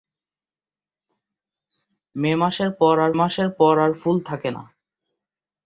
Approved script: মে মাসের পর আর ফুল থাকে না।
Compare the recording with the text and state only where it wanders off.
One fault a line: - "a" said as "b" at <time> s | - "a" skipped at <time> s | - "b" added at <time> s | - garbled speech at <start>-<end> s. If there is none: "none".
- "মাসের পর আর" added at 3.1 s